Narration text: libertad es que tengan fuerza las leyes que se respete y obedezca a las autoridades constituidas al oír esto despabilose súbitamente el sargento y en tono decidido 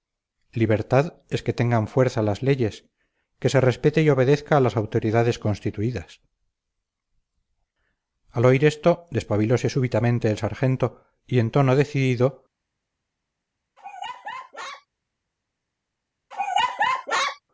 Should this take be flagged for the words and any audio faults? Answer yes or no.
yes